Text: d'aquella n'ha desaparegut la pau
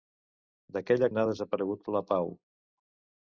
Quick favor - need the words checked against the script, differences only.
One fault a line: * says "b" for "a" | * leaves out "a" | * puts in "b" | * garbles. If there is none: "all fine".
all fine